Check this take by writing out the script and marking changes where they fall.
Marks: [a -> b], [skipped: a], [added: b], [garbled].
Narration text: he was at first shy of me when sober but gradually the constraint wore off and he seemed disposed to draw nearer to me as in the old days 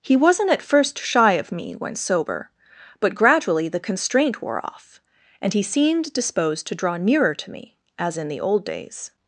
he [was -> wasn't] at first shy of me when sober but gradually the constraint wore off and he seemed disposed to draw nearer to me as in the old days